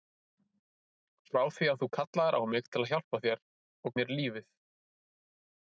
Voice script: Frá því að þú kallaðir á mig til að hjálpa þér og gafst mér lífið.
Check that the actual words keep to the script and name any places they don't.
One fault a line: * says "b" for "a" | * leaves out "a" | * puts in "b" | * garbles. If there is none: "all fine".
* leaves out "gafst"